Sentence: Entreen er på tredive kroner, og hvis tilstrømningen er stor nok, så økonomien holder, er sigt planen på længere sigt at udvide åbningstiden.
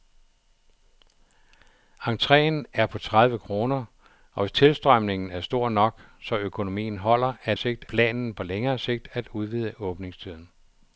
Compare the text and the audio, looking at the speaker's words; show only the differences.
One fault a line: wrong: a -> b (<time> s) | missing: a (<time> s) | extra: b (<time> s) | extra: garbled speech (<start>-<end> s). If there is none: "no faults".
no faults